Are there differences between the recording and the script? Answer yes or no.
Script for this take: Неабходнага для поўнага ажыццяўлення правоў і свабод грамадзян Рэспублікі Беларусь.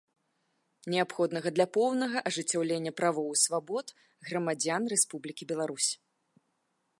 no